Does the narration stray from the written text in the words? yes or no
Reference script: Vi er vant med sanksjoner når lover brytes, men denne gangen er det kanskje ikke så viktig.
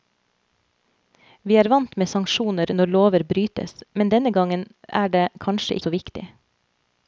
yes